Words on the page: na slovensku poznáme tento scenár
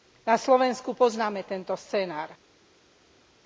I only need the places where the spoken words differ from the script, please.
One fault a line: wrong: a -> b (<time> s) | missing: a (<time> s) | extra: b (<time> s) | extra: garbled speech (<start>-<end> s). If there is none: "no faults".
no faults